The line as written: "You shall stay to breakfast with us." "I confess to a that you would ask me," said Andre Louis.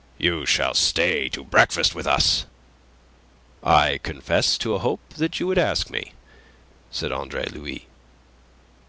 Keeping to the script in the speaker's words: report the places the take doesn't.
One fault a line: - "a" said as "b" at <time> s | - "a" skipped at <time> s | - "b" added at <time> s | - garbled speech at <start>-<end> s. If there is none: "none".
- "hope" added at 4.8 s